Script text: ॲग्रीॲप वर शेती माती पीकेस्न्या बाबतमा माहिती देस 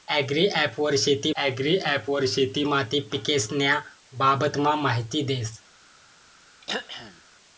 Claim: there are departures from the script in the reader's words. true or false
true